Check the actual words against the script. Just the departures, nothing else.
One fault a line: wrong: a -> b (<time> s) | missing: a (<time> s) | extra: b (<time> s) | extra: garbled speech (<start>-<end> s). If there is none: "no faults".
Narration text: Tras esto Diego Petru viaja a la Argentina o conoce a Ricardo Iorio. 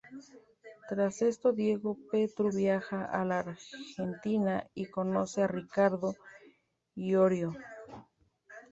wrong: o -> y (4.7 s)